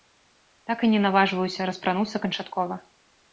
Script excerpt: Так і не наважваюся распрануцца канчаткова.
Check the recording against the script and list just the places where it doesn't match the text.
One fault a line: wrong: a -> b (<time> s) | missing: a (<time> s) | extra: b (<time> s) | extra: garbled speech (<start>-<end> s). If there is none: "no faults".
no faults